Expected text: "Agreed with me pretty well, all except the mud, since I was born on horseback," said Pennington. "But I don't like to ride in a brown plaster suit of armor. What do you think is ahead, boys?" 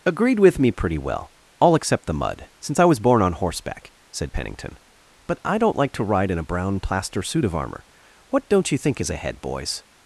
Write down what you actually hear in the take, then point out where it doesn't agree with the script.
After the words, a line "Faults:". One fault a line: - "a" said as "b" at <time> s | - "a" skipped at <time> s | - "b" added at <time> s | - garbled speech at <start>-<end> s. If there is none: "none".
"Agreed with me pretty well, all except the mud, since I was born on horseback," said Pennington. "But I don't like to ride in a brown plaster suit of armor. What don't you think is ahead, boys?"
Faults:
- "do" said as "don't" at 8.5 s